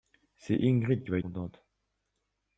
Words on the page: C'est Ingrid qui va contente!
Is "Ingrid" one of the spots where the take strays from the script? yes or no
no